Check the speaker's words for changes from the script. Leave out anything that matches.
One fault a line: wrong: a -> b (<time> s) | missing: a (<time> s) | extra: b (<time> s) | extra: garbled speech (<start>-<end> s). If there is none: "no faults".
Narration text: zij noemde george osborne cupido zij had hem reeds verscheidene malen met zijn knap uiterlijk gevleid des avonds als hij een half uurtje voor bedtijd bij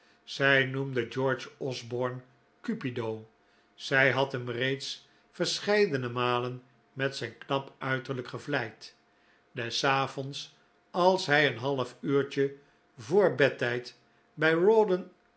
no faults